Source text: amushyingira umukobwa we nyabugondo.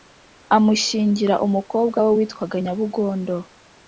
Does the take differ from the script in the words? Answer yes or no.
yes